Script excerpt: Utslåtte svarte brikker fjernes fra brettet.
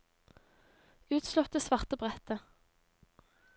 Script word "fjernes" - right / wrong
wrong